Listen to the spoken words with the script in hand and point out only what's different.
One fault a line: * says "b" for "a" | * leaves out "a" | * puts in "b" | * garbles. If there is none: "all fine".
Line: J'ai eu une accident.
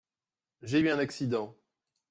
* says "un" for "une"